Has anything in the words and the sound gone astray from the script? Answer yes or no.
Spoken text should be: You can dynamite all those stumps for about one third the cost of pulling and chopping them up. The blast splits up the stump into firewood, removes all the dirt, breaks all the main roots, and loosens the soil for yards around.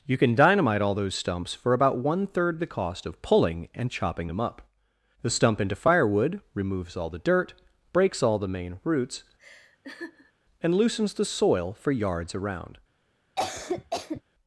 yes